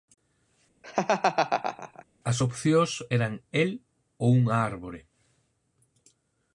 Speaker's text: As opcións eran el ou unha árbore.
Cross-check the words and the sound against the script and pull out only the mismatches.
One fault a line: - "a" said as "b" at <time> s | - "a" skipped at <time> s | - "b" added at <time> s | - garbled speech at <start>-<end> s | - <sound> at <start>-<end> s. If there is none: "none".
- laugh at 0.8-2.0 s